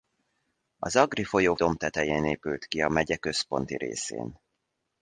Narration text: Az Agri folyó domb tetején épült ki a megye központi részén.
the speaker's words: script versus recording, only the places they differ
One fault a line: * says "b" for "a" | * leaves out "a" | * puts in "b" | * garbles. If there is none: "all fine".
all fine